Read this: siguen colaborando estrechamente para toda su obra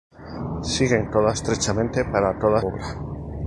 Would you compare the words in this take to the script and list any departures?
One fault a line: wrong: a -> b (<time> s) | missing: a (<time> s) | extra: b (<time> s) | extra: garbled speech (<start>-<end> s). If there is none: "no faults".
wrong: colaborando -> toda (1.1 s)
missing: su (2.6 s)